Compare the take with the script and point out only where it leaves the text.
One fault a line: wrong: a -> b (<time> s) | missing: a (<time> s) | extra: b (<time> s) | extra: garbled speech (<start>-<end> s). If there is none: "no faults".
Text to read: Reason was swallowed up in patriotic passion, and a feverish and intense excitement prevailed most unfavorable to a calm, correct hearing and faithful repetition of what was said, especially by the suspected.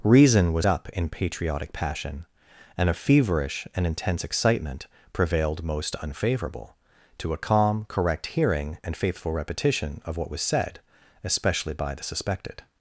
missing: swallowed (0.7 s)